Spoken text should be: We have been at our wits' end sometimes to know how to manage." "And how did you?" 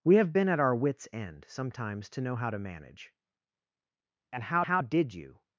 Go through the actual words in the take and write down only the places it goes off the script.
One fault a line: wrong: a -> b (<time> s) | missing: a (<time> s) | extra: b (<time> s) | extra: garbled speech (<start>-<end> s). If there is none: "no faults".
extra: how (4.6 s)